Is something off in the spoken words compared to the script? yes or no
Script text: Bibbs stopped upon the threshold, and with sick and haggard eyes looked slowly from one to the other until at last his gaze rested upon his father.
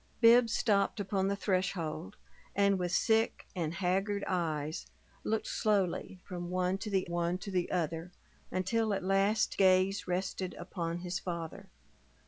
yes